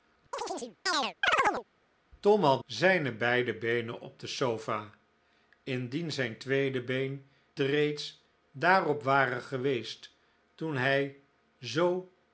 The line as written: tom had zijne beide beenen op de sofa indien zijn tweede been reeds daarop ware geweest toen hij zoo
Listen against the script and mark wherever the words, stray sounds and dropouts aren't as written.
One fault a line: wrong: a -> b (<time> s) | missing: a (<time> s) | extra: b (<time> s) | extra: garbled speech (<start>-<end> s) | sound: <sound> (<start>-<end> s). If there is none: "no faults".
sound: chirp (0.3-1.6 s)